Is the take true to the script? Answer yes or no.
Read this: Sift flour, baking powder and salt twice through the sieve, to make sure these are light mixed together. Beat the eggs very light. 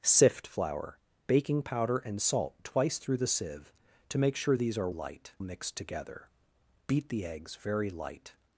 yes